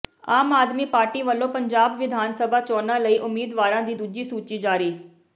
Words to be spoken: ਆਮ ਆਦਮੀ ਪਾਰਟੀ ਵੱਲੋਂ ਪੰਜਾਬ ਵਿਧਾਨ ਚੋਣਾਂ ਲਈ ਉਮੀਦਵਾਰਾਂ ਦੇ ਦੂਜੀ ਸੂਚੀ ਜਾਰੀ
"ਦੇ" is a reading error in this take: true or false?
true